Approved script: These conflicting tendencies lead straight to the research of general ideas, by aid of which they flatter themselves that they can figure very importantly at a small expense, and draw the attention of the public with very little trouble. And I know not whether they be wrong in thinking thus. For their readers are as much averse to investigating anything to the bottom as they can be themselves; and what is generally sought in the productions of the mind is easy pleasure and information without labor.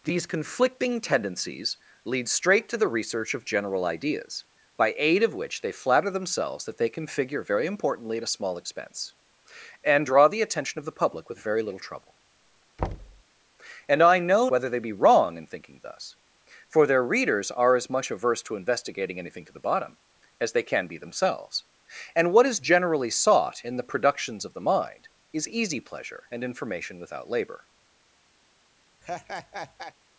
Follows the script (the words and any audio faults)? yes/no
no